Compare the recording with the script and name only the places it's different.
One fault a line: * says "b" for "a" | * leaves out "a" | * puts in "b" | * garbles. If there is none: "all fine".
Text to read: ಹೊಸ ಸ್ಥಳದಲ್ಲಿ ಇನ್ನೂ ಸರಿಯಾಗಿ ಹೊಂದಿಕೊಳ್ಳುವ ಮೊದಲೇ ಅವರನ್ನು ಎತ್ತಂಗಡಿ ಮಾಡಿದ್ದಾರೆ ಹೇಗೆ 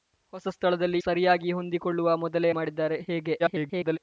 * leaves out "ಇನ್ನೂ"
* leaves out "ಅವರನ್ನು ಎತ್ತಂಗಡಿ"
* garbles